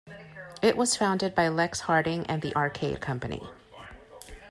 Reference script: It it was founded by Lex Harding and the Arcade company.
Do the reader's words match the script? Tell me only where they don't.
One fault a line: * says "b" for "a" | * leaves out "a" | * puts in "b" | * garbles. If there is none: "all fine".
* leaves out "it"